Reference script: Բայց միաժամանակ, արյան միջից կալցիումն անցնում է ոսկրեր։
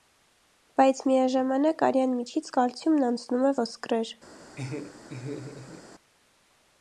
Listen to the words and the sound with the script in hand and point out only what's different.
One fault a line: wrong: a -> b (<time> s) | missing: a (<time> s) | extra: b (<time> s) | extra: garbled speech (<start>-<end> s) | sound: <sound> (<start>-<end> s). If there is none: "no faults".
sound: laugh (4.6-5.8 s)